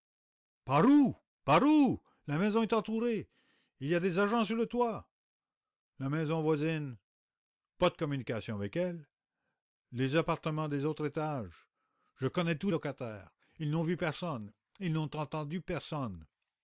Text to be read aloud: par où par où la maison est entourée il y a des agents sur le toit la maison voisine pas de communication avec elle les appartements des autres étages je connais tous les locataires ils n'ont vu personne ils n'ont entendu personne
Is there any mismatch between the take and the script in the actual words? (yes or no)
yes